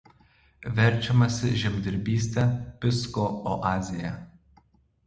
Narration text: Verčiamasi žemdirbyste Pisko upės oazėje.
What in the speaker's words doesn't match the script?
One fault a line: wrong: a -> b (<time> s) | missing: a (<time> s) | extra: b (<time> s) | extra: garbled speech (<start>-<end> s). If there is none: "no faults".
missing: upės (3.3 s)